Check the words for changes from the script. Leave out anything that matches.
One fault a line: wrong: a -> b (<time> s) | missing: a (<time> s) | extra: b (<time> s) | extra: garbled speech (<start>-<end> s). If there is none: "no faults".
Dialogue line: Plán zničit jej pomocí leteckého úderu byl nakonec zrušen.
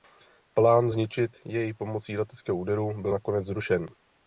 no faults